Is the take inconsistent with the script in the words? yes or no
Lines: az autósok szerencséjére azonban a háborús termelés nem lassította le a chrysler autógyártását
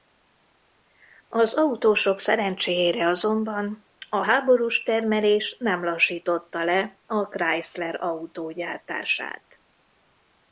no